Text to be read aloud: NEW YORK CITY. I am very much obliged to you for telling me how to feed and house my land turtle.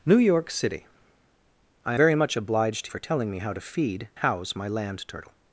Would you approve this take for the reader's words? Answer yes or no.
no